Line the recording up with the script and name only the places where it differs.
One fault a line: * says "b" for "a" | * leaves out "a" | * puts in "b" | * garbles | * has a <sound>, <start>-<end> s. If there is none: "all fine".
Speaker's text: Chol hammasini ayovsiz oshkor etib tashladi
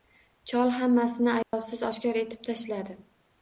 * has a dropout, 1.4-1.5 s